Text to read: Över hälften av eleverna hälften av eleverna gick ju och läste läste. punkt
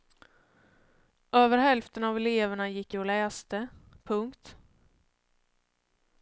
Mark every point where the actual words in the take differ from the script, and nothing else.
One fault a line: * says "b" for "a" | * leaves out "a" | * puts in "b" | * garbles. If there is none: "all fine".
* leaves out "hälften av eleverna"
* leaves out "läste"